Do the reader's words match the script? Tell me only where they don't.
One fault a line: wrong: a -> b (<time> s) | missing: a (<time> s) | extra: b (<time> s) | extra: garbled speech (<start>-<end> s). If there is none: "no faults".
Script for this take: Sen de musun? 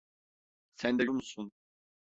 no faults